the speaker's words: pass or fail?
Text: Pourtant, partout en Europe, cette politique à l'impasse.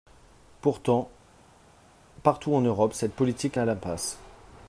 pass